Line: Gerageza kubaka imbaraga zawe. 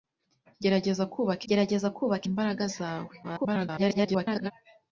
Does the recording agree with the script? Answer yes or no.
no